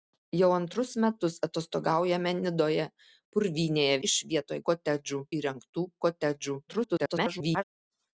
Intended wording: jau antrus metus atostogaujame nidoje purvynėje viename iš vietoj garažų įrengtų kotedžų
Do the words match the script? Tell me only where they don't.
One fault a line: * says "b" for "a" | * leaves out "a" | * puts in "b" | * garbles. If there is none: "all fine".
* leaves out "viename"
* says "kotedžų" for "garažų"
* garbles